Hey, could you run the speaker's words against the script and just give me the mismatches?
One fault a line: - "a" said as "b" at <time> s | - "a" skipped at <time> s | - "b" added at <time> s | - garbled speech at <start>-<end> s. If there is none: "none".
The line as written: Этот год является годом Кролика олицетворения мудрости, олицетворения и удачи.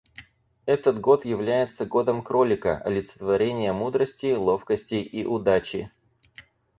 - "олицетворения" said as "ловкости" at 4.3 s